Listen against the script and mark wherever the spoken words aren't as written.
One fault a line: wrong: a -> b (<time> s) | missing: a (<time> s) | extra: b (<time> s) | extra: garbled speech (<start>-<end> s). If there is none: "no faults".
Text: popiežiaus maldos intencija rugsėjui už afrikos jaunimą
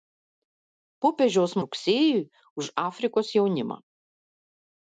missing: maldos intencija (1.5 s)